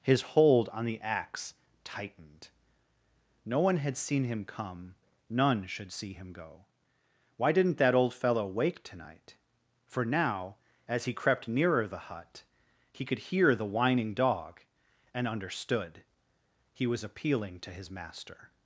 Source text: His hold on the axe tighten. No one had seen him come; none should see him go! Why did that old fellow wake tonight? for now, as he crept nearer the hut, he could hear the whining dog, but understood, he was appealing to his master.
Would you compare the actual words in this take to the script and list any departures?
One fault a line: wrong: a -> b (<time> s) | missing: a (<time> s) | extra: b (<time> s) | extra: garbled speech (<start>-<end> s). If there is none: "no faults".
wrong: tighten -> tightened (1.8 s)
wrong: did -> didn't (7.5 s)
wrong: but -> and (15.1 s)